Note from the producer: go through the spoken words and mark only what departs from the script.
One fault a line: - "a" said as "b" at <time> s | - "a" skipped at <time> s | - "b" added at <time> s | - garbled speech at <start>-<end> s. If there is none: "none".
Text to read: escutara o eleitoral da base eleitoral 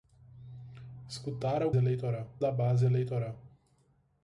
none